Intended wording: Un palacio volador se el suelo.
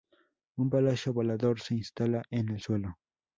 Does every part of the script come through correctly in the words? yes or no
no